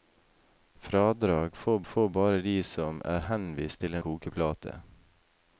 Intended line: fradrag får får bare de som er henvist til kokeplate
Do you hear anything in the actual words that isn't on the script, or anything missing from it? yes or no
no